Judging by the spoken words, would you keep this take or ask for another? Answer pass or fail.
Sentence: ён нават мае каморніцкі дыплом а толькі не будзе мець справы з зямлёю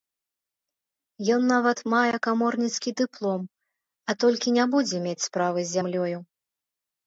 pass